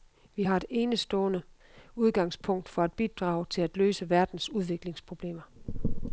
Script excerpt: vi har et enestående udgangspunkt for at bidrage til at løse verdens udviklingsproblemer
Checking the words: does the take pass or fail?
pass